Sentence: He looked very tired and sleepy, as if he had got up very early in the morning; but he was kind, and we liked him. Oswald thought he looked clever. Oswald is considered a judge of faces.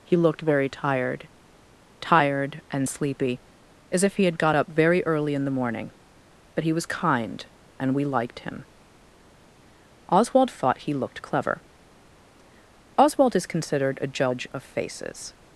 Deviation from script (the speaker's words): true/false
true